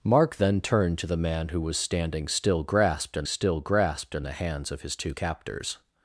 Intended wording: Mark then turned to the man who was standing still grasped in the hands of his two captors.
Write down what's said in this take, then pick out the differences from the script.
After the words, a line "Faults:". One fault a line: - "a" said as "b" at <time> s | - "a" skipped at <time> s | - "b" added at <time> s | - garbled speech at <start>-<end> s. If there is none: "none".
Mark then turned to the man who was standing still grasped in still grasped in the hands of his two captors.
Faults:
- "still grasped in" added at 3.2 s